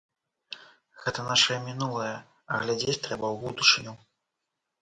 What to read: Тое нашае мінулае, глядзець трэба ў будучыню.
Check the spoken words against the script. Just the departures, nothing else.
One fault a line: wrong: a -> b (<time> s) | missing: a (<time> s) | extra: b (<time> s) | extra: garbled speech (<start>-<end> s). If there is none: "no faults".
wrong: Тое -> Гэта (1.0 s)
extra: а (2.5 s)